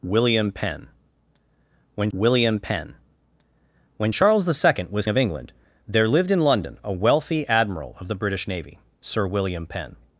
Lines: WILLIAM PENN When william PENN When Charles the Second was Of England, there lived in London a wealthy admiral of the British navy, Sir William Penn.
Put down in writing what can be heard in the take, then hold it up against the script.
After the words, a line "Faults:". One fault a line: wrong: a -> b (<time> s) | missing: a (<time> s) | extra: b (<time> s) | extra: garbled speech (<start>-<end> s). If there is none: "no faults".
WILLIAM PENN When william PENN When Charles the Second was Of England, there lived in London a wealthy admiral of the British navy, Sir William Penn.
Faults:
no faults